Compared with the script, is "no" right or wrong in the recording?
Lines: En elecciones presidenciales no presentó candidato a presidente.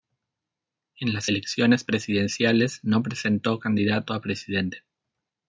right